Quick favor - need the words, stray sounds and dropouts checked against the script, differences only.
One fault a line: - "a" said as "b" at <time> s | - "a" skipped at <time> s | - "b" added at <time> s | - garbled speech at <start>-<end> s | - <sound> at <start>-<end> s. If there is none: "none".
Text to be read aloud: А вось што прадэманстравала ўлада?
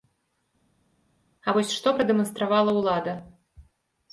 none